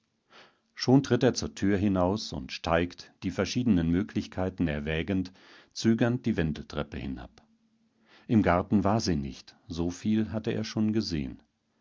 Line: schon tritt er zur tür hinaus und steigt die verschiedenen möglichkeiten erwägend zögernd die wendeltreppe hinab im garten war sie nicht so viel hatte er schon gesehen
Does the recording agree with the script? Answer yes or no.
yes